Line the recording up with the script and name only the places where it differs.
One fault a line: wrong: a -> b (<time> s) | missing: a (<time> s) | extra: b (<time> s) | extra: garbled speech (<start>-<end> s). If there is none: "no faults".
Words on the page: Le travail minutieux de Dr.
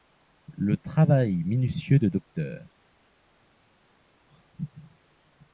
no faults